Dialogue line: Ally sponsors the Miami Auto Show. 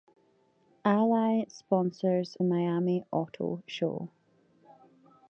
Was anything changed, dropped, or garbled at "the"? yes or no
yes